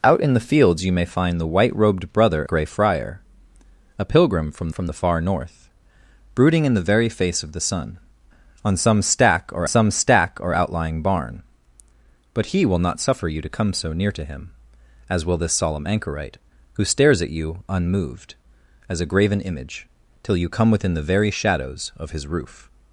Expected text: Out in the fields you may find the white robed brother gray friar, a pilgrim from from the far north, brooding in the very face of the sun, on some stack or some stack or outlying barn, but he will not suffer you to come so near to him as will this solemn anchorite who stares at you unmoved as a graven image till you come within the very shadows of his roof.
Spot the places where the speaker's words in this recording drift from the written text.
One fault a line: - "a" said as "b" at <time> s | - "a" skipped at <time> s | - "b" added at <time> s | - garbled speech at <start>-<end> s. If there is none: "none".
none